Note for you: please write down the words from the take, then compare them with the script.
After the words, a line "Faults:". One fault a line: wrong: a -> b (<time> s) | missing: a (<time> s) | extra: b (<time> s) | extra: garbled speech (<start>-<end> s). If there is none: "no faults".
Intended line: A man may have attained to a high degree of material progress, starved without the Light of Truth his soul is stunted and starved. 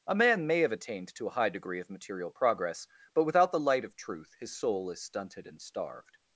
A man may have attained to a high degree of material progress, but without the Light of Truth his soul is stunted and starved.
Faults:
wrong: starved -> but (3.1 s)